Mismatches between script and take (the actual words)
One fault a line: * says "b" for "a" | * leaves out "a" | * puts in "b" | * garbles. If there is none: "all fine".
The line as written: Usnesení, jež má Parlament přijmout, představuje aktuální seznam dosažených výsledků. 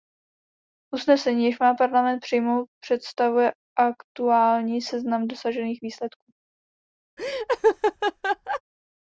all fine